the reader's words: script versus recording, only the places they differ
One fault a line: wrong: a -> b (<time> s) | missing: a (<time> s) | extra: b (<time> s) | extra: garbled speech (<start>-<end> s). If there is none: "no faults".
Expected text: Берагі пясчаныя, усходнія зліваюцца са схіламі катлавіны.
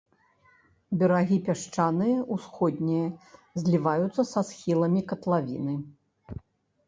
no faults